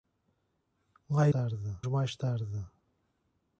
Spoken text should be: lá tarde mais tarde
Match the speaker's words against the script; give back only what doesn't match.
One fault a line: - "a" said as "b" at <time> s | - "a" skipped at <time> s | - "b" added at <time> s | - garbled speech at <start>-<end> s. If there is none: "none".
none